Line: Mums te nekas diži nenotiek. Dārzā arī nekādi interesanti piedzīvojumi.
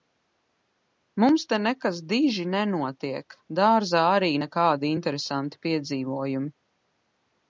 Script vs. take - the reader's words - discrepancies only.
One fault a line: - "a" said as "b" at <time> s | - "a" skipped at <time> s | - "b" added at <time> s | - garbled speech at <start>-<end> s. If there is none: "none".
none